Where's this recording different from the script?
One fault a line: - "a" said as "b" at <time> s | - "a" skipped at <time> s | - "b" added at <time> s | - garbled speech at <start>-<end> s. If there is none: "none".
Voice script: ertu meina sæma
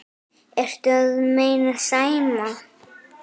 - "að" added at 1.0 s